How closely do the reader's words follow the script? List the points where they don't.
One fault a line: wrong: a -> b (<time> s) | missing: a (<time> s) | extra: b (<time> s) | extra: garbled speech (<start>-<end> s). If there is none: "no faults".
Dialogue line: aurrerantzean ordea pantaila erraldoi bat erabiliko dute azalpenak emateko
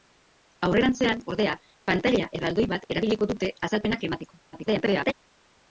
extra: garbled speech (4.5-5.1 s)